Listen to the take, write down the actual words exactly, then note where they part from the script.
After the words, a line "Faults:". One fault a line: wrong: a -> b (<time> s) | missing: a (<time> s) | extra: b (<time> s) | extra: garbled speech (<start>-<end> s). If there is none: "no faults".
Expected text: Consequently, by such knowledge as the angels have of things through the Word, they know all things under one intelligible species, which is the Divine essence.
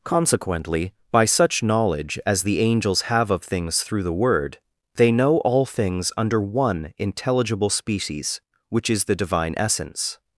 Consequently, by such knowledge as the angels have of things through the Word, they know all things under one intelligible species, which is the Divine essence.
Faults:
no faults